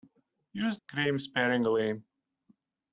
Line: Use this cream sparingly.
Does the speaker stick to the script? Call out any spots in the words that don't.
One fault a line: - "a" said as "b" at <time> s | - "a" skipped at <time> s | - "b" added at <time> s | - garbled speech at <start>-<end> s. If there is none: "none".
- "this" skipped at 0.8 s